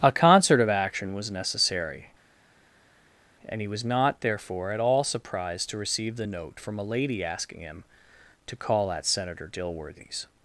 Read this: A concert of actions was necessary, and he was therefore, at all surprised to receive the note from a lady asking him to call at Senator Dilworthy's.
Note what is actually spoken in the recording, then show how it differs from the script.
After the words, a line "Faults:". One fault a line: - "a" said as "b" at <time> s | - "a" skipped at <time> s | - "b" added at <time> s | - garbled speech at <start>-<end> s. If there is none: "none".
A concert of action was necessary, and he was not, therefore, at all surprised to receive the note from a lady asking him to call at Senator Dilworthy's.
Faults:
- "actions" said as "action" at 0.7 s
- "not" added at 3.8 s